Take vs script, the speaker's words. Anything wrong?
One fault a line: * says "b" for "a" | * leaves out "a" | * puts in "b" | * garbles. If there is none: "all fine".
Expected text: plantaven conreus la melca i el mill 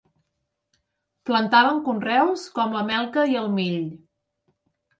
* puts in "com"